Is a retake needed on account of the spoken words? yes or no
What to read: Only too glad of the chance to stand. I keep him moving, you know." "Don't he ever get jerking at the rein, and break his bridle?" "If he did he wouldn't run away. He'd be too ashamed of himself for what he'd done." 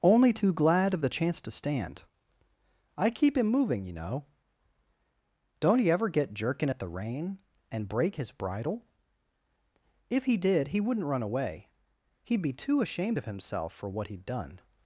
no